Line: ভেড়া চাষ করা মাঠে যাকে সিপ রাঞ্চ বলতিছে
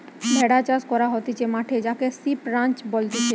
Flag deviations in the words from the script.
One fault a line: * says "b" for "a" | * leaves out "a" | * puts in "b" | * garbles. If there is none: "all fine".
* puts in "হতিছে"